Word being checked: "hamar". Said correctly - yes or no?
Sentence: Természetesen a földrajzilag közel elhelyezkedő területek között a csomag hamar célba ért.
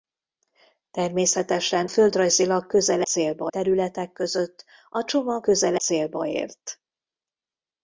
no